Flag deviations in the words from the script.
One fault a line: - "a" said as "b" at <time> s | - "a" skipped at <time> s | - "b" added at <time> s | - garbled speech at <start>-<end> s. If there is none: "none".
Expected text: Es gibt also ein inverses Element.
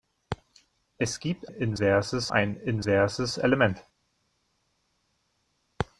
- "also" said as "inverses" at 1.5 s